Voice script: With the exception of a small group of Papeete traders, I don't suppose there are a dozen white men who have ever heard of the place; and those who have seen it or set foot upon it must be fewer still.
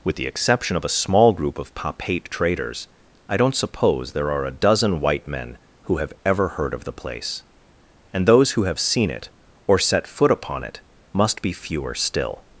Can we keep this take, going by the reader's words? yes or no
yes